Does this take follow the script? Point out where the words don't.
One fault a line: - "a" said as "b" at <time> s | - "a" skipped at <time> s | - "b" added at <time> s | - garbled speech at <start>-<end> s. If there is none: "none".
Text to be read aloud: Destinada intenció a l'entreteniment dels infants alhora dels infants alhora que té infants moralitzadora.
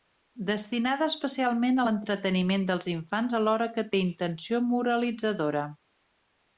- "intenció" said as "especialment" at 1.1 s
- "dels infants alhora" skipped at 3.7 s
- "infants" said as "intenció" at 4.1 s